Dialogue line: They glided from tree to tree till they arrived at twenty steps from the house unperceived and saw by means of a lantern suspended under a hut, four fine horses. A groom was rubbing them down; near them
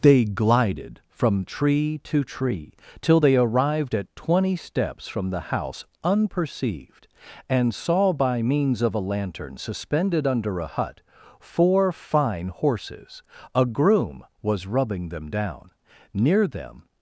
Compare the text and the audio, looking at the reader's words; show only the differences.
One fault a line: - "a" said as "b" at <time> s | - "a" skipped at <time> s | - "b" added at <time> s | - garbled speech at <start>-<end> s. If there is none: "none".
none